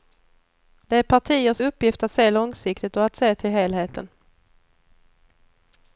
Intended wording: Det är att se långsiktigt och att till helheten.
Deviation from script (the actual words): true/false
true